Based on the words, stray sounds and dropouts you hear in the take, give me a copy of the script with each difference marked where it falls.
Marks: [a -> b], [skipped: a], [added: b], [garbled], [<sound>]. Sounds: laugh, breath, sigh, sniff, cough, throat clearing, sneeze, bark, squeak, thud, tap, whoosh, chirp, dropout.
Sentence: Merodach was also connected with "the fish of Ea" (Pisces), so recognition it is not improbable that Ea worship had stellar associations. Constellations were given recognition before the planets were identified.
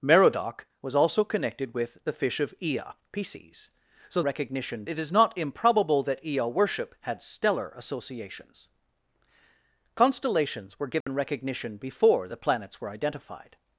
Merodach was also connected with "the fish of Ea" (Pisces), so recognition it is not improbable that Ea worship had stellar associations. Constellations were given [dropout] recognition before the planets were identified.